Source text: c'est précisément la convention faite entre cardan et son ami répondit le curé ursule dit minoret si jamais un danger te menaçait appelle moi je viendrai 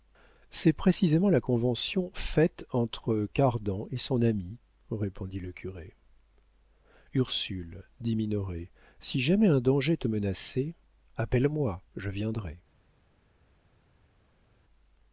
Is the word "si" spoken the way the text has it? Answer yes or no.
yes